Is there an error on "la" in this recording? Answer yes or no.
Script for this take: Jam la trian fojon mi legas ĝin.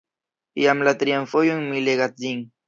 no